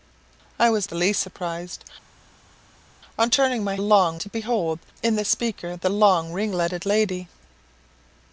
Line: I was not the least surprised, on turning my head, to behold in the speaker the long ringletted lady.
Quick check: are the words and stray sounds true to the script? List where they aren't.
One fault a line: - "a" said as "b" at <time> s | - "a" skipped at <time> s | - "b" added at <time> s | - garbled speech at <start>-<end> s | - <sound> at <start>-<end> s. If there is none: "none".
- "not" skipped at 0.9 s
- "head" said as "long" at 3.8 s